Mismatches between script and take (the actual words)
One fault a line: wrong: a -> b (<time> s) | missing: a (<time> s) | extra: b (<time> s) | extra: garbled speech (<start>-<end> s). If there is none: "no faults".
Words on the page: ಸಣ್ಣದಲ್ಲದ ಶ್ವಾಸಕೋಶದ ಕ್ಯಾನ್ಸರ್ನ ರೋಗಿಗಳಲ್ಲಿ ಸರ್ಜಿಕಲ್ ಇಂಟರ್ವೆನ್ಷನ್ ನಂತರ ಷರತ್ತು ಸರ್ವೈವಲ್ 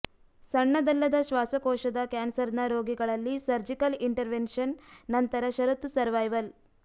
no faults